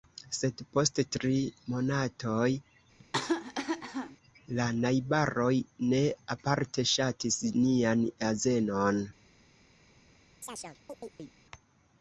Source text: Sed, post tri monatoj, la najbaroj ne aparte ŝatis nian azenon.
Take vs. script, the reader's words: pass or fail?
pass